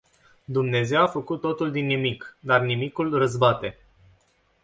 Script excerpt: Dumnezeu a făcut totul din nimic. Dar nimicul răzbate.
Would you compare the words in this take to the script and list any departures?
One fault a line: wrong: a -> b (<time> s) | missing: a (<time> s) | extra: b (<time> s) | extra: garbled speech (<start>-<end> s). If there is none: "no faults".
no faults